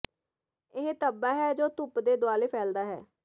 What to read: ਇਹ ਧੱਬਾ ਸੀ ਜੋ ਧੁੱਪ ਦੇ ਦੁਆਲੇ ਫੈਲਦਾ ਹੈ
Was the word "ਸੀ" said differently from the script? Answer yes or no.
yes